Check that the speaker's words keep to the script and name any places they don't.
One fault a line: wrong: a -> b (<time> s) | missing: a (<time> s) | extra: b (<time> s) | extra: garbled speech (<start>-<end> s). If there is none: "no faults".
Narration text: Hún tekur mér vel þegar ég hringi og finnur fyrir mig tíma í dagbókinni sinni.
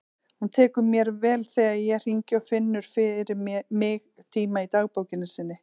no faults